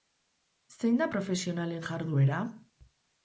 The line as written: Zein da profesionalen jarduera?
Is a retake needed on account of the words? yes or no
no